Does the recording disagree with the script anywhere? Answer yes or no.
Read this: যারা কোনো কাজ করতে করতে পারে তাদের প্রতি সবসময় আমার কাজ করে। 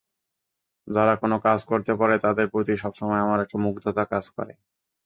yes